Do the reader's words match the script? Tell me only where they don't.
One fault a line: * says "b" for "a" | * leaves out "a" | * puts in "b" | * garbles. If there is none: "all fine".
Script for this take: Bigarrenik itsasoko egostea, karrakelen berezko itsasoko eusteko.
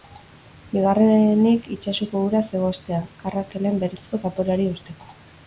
* puts in "uraz"
* says "zaporeari" for "itsasoko"